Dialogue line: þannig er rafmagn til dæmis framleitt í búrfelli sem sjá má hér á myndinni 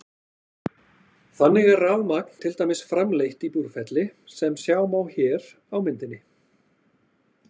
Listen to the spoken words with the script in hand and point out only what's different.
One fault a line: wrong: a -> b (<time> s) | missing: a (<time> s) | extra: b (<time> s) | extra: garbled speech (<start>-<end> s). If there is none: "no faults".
no faults